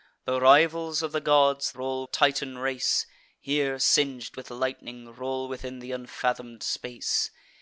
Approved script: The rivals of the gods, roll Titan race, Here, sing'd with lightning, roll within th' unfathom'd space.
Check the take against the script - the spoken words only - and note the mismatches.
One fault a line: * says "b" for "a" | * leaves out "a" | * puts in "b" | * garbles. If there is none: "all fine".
all fine